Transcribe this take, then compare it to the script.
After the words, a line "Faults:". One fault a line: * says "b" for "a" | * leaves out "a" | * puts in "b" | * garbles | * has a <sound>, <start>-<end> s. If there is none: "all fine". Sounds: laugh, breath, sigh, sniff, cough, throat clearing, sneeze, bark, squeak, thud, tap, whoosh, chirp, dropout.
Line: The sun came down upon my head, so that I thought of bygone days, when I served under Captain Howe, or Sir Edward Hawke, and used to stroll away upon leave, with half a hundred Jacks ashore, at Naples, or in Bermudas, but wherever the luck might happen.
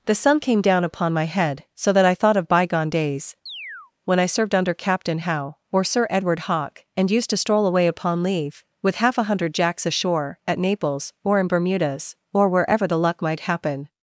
The sun came down upon my head, so that I thought of bygone days, when I served under Captain Howe, or Sir Edward Hawke, and used to stroll away upon leave, with half a hundred Jacks ashore, at Naples, or in Bermudas, or wherever the luck might happen.
Faults:
* has a chirp, 3.5-3.9 s
* says "or" for "but"